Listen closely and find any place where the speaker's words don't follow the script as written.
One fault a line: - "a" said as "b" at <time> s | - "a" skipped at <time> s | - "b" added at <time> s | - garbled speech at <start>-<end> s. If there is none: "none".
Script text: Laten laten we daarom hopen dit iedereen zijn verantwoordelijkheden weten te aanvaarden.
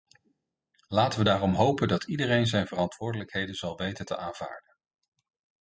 - "laten" skipped at 1.2 s
- "dit" said as "dat" at 1.9 s
- "zal" added at 3.5 s